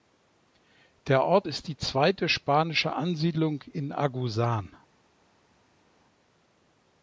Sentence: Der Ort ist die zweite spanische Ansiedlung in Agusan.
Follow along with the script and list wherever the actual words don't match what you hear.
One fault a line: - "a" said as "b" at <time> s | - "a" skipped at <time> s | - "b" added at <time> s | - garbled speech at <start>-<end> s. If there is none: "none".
none